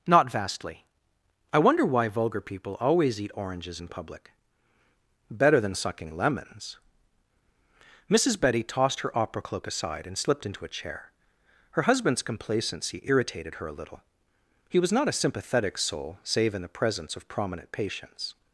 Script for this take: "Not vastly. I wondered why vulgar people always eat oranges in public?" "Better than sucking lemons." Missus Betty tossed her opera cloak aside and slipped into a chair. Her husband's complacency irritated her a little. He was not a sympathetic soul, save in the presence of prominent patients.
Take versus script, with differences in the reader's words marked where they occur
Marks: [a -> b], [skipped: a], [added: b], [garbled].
"Not vastly. I [wondered -> wonder] why vulgar people always eat oranges in public?" "Better than sucking lemons." Missus Betty tossed her opera cloak aside and slipped into a chair. Her husband's complacency irritated her a little. He was not a sympathetic soul, save in the presence of prominent patients.